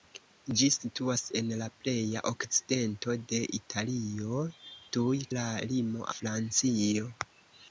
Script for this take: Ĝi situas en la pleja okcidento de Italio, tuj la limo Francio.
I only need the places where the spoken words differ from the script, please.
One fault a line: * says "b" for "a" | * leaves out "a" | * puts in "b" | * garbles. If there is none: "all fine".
all fine